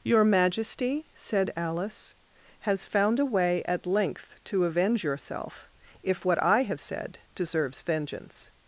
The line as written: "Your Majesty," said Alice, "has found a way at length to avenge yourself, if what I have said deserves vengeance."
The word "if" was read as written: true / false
true